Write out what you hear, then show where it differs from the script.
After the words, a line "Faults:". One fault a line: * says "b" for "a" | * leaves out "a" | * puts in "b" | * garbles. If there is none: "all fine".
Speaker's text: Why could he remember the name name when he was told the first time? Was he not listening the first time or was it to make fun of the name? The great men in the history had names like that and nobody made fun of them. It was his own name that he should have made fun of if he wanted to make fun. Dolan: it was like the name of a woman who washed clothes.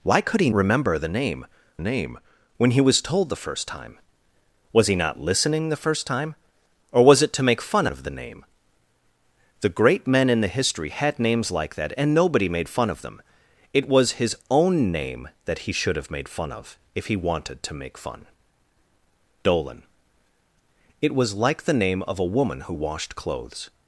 Why could he remember the name name when he was told the first time? Was he not listening the first time or was it to make fun of the name? The great men in the history had names like that and nobody made fun of them. It was his own name that he should have made fun of if he wanted to make fun. Dolan: it was like the name of a woman who washed clothes.
Faults:
all fine